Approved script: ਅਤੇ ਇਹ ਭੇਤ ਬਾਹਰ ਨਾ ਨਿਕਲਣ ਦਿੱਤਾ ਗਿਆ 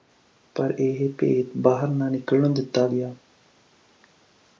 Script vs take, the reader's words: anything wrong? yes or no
yes